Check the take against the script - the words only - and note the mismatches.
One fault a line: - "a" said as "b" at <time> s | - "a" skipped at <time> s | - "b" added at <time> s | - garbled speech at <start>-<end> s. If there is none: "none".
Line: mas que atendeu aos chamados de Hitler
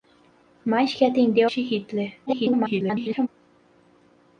- "aos chamados" skipped at 1.5 s
- garbled speech at 2.3-3.3 s